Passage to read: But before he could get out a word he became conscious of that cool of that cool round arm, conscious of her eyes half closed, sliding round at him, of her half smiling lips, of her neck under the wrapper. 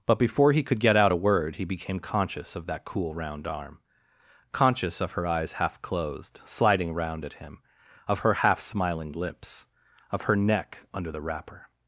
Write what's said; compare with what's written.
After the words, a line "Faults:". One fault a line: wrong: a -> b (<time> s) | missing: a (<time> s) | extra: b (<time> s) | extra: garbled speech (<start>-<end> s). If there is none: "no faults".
But before he could get out a word he became conscious of that cool round arm, conscious of her eyes half closed, sliding round at him, of her half smiling lips, of her neck under the wrapper.
Faults:
missing: of that cool (3.1 s)